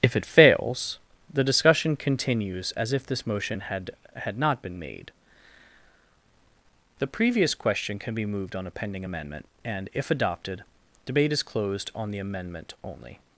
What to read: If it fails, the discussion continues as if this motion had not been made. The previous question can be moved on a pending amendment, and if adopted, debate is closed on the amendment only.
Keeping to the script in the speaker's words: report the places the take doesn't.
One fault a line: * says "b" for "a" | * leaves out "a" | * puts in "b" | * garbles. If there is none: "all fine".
* puts in "had"